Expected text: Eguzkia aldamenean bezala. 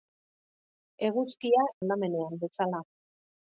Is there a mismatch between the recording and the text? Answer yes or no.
no